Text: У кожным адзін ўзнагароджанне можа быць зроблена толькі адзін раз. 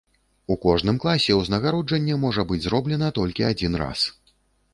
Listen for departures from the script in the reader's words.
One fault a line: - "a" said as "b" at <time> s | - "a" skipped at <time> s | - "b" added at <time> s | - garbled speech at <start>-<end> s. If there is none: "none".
- "адзін" said as "класе" at 1.0 s